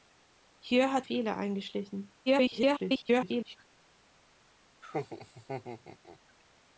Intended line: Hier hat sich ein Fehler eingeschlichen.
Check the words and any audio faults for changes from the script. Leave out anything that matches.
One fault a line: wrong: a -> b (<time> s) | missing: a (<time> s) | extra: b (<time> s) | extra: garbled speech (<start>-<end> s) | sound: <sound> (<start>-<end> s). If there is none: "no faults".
missing: sich ein (1.1 s)
extra: garbled speech (2.3-3.6 s)
sound: laugh (4.8-6.2 s)